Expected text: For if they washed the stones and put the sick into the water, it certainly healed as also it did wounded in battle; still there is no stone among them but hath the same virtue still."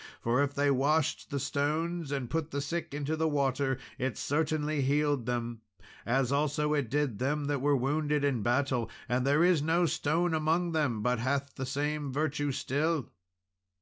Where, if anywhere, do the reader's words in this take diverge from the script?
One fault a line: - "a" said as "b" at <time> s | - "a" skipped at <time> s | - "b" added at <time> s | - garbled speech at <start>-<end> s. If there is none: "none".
- "them" added at 5.3 s
- "them that were" added at 7.2 s
- "still" said as "and" at 9.1 s